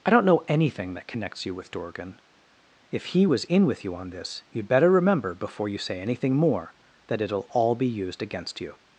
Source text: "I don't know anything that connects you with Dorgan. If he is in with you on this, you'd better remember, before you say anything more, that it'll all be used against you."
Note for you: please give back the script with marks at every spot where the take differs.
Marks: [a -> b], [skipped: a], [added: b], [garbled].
"I don't know anything that connects you with Dorgan. If he [is -> was] in with you on this, you'd better remember, before you say anything more, that it'll all be used against you."